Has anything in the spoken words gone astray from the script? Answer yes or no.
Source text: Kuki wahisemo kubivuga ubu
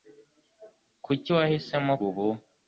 yes